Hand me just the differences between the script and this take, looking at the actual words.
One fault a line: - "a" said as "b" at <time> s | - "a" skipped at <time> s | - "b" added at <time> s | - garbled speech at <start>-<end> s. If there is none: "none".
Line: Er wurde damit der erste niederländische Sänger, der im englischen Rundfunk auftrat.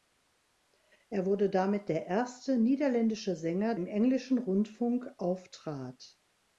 - "der" skipped at 3.8 s